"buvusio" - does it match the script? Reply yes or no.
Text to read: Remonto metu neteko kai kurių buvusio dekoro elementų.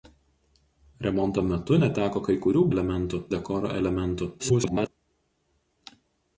no